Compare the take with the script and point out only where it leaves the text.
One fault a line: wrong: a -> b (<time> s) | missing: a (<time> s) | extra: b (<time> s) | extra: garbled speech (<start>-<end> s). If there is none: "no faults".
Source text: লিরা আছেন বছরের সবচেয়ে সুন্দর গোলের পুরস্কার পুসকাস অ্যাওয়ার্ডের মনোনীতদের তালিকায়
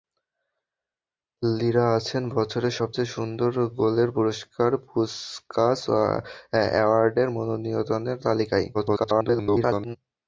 extra: garbled speech (8.7-10.0 s)